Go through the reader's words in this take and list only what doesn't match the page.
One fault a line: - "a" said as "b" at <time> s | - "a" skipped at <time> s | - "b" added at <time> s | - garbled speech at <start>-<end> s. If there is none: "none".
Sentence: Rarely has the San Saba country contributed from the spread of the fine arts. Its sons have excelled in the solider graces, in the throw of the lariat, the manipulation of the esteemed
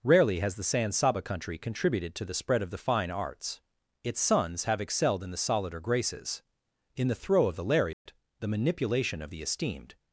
- "from" said as "to" at 2.1 s